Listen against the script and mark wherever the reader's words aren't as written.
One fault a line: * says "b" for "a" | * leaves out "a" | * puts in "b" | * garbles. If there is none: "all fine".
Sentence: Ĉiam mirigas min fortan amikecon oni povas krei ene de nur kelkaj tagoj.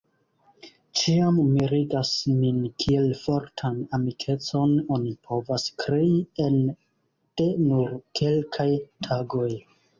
* puts in "kiel"